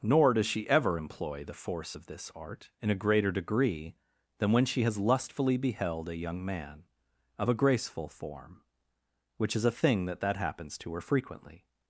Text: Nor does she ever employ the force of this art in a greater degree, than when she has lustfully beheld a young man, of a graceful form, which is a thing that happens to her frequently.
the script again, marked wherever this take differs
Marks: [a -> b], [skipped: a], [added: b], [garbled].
Nor does she ever employ the force of this art in a greater degree, than when she has lustfully beheld a young man, of a graceful form, which is a thing that [added: that] happens to her frequently.